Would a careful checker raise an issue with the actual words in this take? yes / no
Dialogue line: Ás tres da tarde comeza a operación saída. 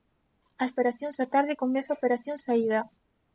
yes